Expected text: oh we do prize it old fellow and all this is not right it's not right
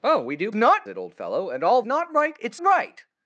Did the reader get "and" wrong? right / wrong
right